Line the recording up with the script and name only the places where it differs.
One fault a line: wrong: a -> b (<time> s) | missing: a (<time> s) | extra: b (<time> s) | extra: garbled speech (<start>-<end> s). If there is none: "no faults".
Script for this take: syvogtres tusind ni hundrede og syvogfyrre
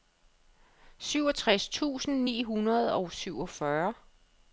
no faults